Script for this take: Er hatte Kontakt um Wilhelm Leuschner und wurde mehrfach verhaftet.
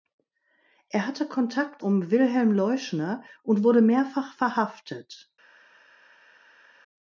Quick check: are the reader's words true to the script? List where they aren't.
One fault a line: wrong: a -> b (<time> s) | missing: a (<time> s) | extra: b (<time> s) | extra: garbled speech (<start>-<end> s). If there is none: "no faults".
no faults